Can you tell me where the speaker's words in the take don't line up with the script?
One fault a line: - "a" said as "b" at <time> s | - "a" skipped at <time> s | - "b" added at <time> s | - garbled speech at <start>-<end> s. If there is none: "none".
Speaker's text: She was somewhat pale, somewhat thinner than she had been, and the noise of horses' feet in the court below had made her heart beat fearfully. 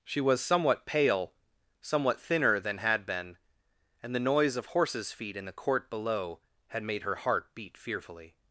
- "she" skipped at 2.8 s